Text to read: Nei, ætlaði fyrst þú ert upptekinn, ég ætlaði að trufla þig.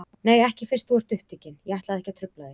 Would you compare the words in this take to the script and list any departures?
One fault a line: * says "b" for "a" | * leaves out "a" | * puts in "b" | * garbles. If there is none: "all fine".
* says "ekki" for "ætlaði"
* puts in "ekki"